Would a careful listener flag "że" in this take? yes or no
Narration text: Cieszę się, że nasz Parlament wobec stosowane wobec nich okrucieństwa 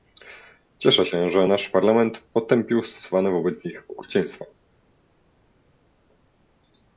no